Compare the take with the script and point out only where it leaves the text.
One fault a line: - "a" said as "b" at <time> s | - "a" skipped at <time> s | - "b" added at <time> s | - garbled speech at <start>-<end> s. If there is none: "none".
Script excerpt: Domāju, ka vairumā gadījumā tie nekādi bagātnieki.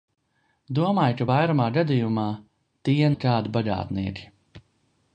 none